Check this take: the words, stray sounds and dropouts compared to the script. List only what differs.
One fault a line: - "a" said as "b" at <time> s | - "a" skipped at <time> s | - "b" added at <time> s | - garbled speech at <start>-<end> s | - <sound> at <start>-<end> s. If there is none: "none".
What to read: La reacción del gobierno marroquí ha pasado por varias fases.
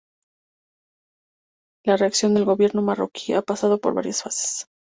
none